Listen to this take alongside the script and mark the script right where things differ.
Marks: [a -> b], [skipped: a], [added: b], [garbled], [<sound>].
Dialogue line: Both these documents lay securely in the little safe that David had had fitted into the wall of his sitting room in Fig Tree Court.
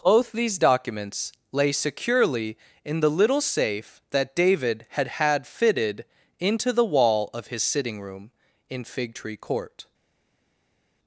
Both these documents lay securely in the little safe that David had had fitted into the wall of his sitting room in Fig Tree Court.